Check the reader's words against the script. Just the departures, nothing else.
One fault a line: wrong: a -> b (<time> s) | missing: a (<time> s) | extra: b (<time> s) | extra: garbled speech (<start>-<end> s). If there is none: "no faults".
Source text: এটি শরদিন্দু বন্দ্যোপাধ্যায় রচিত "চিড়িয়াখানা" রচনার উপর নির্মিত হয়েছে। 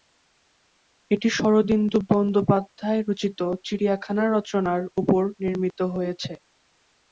no faults